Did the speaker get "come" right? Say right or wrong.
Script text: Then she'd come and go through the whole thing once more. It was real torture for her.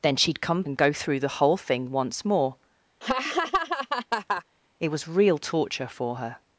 right